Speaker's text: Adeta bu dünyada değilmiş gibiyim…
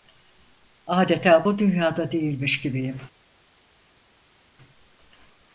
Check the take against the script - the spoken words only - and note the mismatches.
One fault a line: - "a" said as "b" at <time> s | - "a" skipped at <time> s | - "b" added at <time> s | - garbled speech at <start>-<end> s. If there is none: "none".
none